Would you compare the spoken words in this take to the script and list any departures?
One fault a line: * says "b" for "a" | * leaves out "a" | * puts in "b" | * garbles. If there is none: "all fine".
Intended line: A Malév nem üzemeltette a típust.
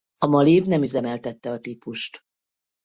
all fine